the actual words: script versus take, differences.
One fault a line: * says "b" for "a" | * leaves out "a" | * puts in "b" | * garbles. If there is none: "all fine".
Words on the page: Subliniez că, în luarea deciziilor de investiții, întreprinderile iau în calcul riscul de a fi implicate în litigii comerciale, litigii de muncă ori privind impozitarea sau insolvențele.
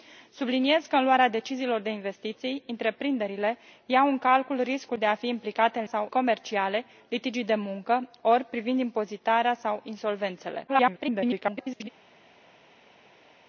* says "sau" for "litigii"
* garbles